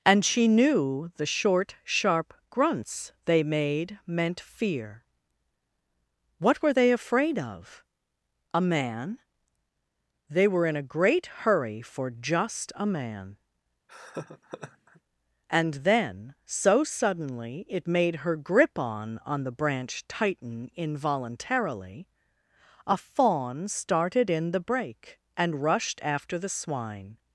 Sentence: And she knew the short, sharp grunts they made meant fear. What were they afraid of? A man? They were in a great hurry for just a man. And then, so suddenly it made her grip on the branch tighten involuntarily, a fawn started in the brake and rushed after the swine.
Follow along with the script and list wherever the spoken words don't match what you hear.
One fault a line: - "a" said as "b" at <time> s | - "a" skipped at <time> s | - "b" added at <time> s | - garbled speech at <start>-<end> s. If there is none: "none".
- "on" added at 19.2 s